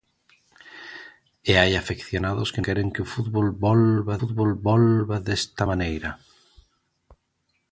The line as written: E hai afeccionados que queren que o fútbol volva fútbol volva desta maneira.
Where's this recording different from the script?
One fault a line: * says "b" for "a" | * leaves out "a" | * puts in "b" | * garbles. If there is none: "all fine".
all fine